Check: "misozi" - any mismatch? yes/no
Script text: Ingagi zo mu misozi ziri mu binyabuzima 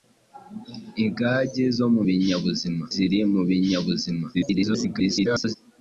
yes